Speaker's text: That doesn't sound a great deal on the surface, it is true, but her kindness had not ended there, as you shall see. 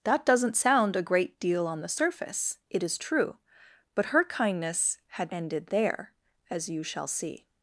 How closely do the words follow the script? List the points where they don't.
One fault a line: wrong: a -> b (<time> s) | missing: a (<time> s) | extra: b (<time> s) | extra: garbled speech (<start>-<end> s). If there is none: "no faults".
missing: not (5.3 s)